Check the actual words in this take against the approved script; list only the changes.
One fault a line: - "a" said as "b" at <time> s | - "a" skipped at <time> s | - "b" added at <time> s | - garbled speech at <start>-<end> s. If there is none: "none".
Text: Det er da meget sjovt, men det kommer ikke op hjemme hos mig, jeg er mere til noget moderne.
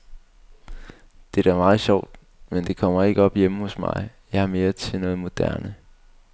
none